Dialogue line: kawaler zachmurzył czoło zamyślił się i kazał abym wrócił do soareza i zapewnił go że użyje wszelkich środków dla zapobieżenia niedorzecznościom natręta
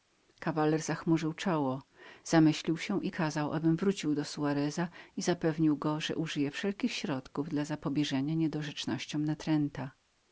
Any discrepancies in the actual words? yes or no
no